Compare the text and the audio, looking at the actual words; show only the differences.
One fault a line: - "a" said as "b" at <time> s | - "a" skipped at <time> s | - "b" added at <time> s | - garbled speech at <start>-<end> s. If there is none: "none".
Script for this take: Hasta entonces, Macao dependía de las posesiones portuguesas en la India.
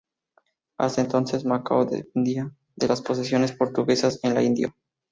none